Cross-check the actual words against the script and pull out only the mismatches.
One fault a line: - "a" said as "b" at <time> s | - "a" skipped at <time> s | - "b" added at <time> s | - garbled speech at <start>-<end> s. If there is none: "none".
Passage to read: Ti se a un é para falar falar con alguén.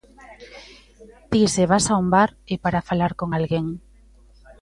- "vas" added at 1.7 s
- "bar" added at 2.1 s
- "falar" skipped at 3.1 s